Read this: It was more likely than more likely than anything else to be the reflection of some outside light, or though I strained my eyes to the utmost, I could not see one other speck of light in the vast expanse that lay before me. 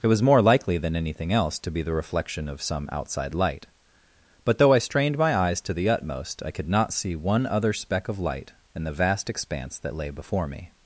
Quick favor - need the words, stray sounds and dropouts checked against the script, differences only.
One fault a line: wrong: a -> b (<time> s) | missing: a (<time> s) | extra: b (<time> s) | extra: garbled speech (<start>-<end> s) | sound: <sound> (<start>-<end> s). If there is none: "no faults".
missing: more likely than (0.9 s)
wrong: or -> but (4.4 s)